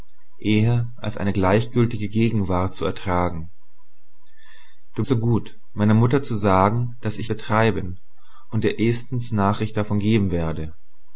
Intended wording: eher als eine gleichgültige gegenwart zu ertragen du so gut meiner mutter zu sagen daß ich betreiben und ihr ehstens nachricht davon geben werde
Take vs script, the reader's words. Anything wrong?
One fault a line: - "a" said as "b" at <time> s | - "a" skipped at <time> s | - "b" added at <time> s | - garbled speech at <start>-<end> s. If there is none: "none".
none